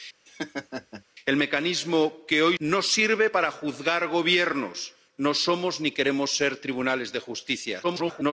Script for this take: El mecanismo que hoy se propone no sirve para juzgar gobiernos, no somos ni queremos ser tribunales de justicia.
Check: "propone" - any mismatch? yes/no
yes